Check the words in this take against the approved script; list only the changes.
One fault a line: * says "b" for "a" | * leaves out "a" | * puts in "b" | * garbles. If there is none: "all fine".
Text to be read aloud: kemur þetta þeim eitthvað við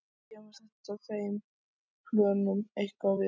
* puts in "plönum"